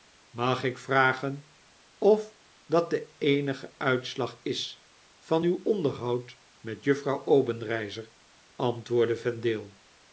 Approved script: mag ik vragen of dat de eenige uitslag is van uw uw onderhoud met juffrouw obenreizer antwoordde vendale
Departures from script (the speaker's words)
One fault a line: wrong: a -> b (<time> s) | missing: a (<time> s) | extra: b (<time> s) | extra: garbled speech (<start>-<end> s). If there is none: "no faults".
missing: uw (5.6 s)